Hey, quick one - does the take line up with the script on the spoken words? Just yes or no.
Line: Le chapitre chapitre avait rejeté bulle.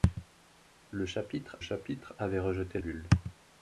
yes